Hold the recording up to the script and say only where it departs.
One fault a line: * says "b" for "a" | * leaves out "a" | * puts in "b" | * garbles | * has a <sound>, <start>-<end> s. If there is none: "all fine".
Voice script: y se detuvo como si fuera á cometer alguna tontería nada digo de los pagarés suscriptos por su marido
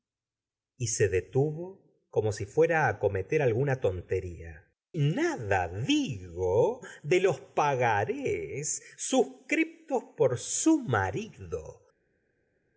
all fine